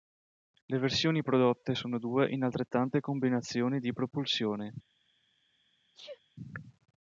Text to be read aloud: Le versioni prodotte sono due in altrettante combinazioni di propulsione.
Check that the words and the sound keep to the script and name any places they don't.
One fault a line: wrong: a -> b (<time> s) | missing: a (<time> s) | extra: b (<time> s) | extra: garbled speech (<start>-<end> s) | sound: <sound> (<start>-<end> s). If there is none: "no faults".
sound: sneeze (5.9-6.2 s)